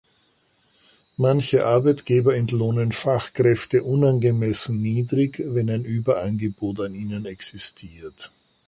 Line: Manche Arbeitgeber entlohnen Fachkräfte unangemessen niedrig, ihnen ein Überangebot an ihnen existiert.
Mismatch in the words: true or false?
true